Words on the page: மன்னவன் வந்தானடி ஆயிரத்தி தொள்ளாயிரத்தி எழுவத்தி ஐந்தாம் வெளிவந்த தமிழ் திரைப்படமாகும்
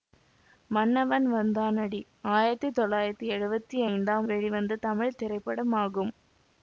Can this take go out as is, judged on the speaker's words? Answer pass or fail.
pass